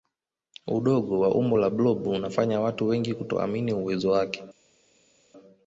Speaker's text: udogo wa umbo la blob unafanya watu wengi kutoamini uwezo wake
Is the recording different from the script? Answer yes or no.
no